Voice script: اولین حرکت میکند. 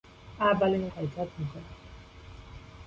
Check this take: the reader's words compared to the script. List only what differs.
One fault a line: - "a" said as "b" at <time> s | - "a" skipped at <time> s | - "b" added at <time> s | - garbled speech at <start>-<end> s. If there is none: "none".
none